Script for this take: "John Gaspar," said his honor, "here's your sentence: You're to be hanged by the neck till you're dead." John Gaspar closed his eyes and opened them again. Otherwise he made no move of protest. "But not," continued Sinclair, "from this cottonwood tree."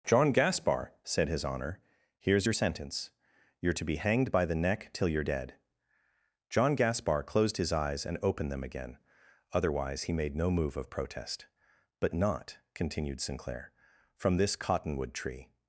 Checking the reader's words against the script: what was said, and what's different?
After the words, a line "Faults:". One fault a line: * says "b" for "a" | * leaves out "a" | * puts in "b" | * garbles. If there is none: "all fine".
"John Gaspar," said his honor, "here's your sentence: You're to be hanged by the neck till you're dead." John Gaspar closed his eyes and opened them again. Otherwise he made no move of protest. "But not," continued Sinclair, "from this cottonwood tree."
Faults:
all fine